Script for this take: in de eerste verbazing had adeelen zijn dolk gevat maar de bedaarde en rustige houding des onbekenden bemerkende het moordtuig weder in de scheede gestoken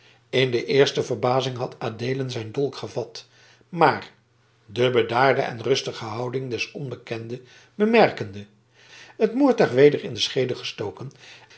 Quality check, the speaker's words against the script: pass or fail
pass